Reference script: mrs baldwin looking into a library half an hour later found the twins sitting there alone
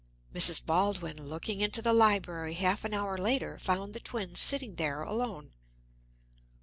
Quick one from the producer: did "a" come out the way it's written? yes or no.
no